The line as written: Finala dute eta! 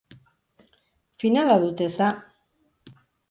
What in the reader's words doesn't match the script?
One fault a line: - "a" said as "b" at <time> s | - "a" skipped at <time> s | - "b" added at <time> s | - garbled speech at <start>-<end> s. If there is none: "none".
none